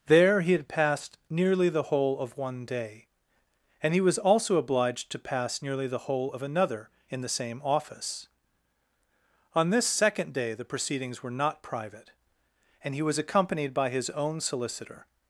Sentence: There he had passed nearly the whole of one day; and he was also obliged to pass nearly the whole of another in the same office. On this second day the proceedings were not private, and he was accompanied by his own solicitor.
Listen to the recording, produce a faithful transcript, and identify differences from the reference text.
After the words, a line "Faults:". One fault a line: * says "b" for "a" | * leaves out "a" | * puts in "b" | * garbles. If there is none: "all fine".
There he had passed nearly the whole of one day; and he was also obliged to pass nearly the whole of another in the same office. On this second day the proceedings were not private, and he was accompanied by his own solicitor.
Faults:
all fine